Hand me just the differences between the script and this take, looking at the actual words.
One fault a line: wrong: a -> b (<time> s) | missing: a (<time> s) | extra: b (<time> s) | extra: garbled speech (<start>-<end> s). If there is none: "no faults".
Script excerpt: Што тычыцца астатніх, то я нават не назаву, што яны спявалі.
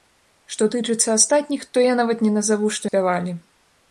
missing: яны (2.9 s)